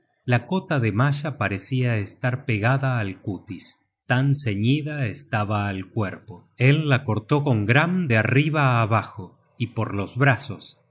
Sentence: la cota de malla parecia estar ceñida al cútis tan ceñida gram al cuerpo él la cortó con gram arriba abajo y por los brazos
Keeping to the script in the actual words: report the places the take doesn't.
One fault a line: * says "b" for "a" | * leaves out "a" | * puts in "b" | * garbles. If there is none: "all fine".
* says "pegada" for "ceñida"
* says "estaba" for "gram"
* puts in "de"